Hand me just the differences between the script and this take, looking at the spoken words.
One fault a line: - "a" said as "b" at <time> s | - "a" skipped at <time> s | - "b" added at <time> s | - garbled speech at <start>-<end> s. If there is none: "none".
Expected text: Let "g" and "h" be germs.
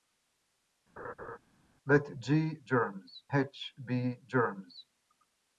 - "and" said as "germs" at 2.6 s